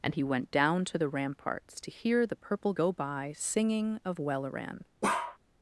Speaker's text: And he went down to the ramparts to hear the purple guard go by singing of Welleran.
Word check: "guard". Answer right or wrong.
wrong